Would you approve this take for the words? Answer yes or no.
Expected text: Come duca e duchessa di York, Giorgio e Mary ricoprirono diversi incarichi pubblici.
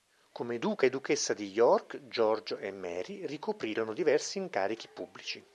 yes